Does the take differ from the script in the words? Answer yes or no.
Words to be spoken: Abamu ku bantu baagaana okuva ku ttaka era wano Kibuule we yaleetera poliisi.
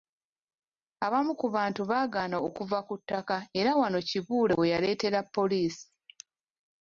no